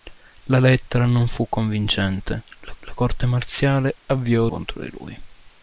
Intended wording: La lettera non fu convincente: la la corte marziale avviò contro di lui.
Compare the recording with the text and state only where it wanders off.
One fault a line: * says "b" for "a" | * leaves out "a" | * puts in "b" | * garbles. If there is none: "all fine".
all fine